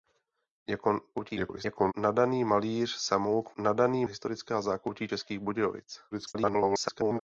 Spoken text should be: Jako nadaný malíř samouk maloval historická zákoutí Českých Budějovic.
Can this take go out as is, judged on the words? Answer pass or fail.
fail